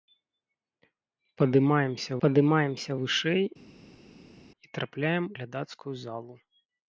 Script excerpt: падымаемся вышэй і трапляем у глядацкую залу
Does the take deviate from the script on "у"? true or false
true